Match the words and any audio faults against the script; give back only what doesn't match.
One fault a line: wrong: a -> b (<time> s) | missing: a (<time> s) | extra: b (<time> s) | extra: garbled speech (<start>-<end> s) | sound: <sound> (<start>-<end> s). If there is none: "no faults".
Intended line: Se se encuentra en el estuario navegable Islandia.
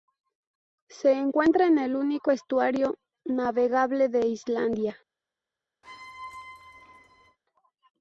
missing: se (1.1 s)
extra: único (1.9 s)
extra: de (4.1 s)
sound: squeak (5.8-7.4 s)